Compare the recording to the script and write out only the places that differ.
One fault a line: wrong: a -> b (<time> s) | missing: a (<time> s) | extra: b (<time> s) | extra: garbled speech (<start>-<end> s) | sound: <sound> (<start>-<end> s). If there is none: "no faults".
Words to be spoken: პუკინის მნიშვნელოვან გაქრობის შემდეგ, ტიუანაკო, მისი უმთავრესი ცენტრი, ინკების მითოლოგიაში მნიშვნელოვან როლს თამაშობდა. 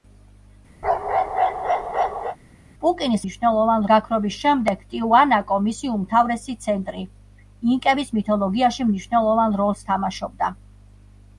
sound: bark (0.8-2.4 s)